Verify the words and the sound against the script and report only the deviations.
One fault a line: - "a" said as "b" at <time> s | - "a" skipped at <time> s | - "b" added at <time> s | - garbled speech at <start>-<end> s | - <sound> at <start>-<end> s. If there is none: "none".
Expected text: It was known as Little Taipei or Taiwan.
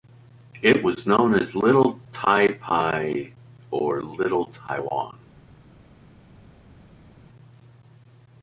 - "Little" added at 4.0 s